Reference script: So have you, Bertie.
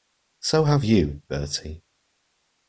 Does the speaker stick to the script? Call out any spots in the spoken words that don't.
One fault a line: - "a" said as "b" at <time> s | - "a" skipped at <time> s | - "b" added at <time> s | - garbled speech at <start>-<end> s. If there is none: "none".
none